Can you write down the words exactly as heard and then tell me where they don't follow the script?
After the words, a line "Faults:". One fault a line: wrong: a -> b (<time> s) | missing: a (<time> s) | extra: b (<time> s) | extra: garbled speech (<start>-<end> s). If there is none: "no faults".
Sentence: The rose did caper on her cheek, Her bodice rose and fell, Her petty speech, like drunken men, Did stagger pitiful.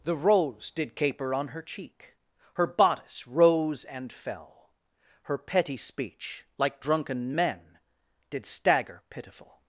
The rose did caper on her cheek, Her bodice rose and fell, Her petty speech, like drunken men, Did stagger pitiful.
Faults:
no faults